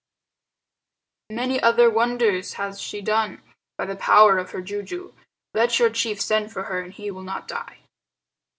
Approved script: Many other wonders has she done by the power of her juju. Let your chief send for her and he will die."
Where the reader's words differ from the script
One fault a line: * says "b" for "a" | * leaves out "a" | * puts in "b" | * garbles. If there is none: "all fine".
* puts in "not"